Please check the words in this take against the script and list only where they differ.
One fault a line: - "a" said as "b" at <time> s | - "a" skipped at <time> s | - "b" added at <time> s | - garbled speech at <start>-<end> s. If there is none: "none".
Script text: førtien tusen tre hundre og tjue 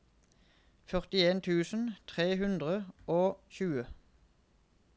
none